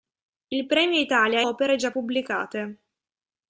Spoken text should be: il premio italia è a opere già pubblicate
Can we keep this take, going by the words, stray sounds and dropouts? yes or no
yes